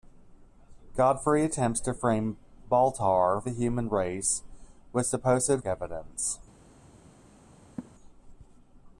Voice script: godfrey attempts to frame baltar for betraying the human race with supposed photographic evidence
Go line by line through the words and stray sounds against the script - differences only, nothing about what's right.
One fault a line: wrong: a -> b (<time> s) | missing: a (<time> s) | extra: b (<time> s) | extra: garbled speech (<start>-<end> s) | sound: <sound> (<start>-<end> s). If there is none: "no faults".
missing: for betraying (3.4 s)
missing: photographic (5.6 s)
sound: laugh (7.8-7.9 s)